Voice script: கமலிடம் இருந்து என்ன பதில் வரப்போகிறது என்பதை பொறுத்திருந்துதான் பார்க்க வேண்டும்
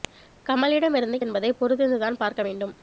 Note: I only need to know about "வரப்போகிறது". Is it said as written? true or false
false